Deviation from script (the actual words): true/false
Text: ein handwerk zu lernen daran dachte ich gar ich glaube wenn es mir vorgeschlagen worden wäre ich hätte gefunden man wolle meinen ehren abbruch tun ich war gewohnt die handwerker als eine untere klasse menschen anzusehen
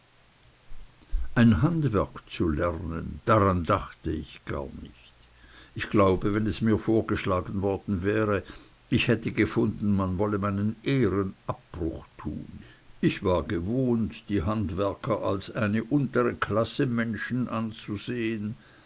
true